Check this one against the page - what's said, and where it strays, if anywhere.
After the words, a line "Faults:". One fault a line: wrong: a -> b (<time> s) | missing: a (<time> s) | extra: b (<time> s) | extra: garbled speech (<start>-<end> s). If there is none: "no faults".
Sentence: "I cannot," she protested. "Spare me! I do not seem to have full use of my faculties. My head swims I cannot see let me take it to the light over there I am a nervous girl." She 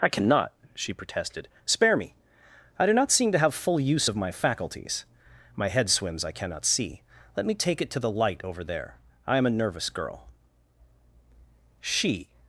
"I cannot," she protested. "Spare me! I do not seem to have full use of my faculties. My head swims I cannot see let me take it to the light over there I am a nervous girl." She
Faults:
no faults